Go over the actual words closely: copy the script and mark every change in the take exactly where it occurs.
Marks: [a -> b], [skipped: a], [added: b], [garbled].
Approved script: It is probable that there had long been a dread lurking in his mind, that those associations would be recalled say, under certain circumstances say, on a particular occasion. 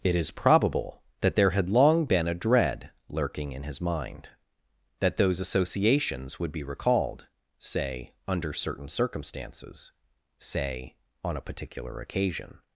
It is probable that there had long been a dread lurking in his mind, that those associations would be recalled say, under certain circumstances say, on a particular occasion.